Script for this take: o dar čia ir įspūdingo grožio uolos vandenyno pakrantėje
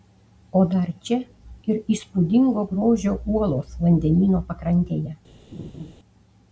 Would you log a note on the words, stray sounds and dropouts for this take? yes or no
yes